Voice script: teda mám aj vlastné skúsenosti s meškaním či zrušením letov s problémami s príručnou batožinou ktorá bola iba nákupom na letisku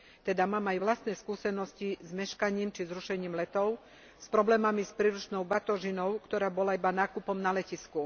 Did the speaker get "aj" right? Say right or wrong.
right